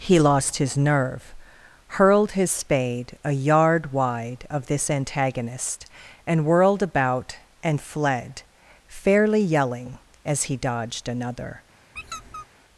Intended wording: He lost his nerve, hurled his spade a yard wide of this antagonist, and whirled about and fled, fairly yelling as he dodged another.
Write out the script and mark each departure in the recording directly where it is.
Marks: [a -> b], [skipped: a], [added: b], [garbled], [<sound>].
He lost his nerve, hurled his spade a yard wide of this antagonist, and whirled about and fled, fairly yelling as he dodged another. [squeak]